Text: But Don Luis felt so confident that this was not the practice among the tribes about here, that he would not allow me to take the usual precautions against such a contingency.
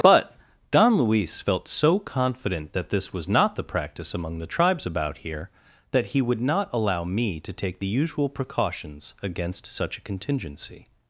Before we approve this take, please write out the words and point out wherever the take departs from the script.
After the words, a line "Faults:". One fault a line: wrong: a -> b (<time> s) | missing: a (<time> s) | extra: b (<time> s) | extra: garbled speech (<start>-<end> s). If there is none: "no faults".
But Don Luis felt so confident that this was not the practice among the tribes about here, that he would not allow me to take the usual precautions against such a contingency.
Faults:
no faults